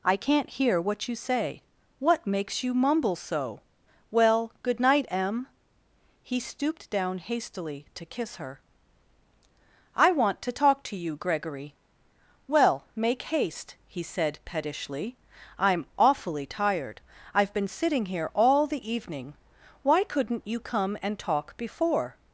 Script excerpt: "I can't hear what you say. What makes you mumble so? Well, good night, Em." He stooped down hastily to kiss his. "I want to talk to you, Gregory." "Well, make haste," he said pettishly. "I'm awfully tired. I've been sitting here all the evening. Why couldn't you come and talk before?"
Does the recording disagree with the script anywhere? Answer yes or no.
yes